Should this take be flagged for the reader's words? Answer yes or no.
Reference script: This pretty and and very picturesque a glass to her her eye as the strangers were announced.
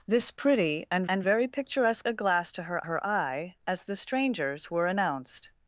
no